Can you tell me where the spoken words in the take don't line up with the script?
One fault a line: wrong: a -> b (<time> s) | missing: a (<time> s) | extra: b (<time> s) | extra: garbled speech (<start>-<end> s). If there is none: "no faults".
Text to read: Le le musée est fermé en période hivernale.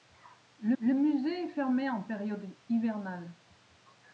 no faults